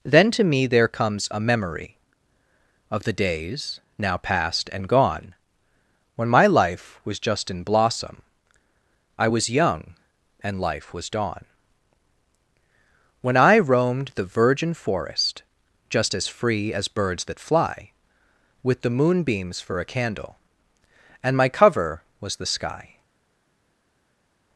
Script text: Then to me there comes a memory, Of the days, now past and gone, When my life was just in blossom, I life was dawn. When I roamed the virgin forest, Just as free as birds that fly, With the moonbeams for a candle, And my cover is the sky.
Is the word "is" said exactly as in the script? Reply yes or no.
no